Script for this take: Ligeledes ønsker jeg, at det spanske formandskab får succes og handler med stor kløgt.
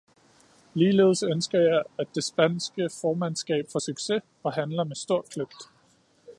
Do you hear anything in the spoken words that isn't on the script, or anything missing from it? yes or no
no